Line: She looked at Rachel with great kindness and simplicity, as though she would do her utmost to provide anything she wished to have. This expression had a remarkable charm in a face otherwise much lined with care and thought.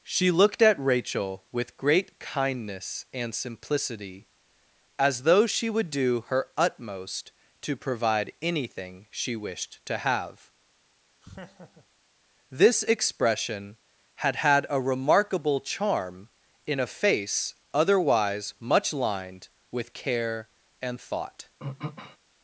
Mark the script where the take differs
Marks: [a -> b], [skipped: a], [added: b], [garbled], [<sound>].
She looked at Rachel with great kindness and simplicity, as though she would do her utmost to provide anything she wished to have. [laugh] This expression had [added: had] a remarkable charm in a face otherwise much lined with care and thought. [throat clearing]